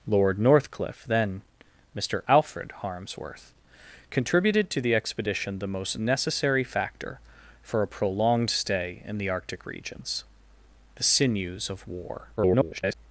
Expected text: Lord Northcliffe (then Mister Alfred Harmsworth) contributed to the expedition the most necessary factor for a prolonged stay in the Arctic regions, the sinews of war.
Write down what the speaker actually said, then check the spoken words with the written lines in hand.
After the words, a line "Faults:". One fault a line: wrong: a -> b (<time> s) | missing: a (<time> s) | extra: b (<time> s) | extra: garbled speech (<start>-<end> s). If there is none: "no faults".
Lord Northcliffe (then Mister Alfred Harmsworth) contributed to the expedition the most necessary factor for a prolonged stay in the Arctic regions, the sinews of war. [garbled]
Faults:
extra: garbled speech (12.4-12.9 s)